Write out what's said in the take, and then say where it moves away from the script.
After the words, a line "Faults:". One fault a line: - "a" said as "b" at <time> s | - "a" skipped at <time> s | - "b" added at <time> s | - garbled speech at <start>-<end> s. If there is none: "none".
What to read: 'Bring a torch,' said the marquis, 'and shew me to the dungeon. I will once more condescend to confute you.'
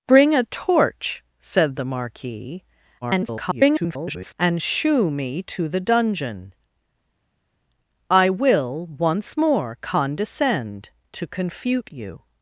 'Bring a torch,' said the marquis, [garbled] 'and shew me to the dungeon. I will once more condescend to confute you.'
Faults:
- garbled speech at 3.0-4.3 s